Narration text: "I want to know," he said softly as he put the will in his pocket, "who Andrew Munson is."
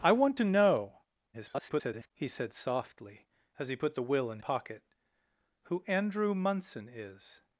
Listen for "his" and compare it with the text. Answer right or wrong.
wrong